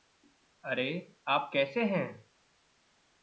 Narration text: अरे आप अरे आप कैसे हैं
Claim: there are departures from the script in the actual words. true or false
true